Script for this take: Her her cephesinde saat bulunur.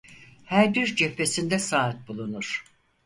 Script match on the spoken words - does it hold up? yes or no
no